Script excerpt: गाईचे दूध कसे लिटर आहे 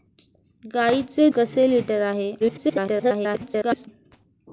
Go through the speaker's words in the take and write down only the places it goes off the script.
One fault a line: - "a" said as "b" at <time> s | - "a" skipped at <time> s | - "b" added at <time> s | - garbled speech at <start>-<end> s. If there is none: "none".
- "दूध" skipped at 1.3 s
- garbled speech at 2.4-3.9 s